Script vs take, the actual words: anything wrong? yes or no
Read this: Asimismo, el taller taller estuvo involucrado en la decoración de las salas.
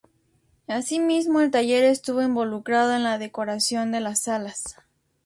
yes